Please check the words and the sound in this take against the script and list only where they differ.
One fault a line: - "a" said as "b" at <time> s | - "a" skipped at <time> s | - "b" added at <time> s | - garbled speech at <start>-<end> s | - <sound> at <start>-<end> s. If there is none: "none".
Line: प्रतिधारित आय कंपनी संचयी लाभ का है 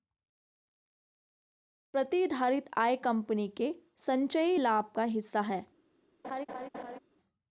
- "के" added at 3.5 s
- "हिस्सा" added at 5.0 s
- laugh at 6.2-7.0 s